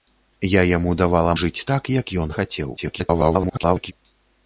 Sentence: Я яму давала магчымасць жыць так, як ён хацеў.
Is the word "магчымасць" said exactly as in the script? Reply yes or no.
no